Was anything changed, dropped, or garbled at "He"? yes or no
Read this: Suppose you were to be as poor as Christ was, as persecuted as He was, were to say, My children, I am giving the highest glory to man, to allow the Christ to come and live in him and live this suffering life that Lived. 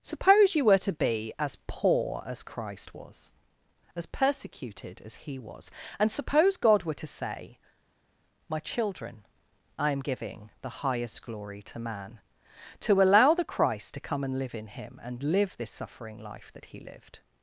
no